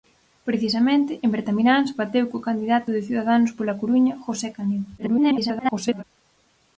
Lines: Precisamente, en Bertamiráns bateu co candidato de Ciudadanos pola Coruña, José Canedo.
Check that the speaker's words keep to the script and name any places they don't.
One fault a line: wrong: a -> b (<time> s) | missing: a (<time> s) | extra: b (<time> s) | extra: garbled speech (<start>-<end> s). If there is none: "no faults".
extra: garbled speech (5.0-6.0 s)